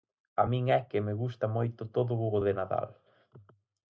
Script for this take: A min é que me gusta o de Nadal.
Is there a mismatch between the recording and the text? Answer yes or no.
yes